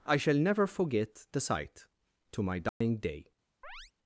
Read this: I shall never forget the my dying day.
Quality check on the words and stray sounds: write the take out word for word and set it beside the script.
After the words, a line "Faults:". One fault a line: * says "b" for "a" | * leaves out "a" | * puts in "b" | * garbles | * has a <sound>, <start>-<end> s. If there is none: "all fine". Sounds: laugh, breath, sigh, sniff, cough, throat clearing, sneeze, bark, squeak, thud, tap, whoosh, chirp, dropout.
I shall never forget the sight, to my dying day.
Faults:
* puts in "sight to"
* has a dropout, 2.7-2.8 s
* has a chirp, 3.6-3.9 s